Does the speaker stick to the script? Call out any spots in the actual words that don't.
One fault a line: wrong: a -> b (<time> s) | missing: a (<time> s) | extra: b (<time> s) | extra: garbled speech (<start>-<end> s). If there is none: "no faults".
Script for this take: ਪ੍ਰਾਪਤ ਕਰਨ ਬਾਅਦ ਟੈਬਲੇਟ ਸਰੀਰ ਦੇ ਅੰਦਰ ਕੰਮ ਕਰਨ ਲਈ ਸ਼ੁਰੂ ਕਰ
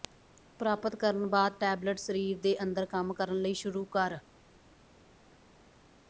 no faults